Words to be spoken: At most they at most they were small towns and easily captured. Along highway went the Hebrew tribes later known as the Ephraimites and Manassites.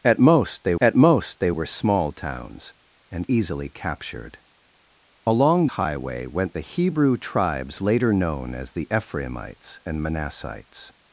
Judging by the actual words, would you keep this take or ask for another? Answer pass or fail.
pass